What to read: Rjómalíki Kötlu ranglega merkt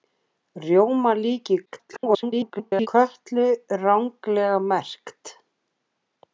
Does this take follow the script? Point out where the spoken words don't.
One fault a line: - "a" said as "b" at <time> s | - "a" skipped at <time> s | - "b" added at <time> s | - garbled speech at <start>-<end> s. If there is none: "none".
- garbled speech at 1.7-2.9 s